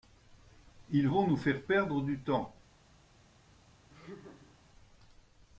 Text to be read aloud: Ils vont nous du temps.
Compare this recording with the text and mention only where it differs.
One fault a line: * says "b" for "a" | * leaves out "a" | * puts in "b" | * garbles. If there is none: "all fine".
* puts in "faire perdre"